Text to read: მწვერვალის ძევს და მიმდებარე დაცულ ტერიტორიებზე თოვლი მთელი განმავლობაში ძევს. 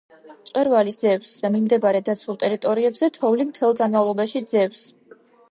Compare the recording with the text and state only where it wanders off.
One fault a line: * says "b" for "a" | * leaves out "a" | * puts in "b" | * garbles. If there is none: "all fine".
all fine